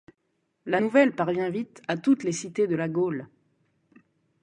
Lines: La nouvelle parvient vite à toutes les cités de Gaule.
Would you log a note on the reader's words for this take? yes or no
yes